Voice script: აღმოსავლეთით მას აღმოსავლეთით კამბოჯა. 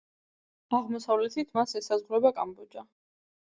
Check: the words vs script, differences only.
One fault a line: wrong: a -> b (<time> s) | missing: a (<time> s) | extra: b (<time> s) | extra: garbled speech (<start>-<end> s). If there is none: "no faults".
wrong: აღმოსავლეთით -> ესაზღვრება (1.8 s)